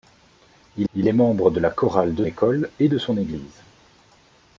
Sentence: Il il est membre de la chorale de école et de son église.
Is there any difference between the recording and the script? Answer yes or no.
no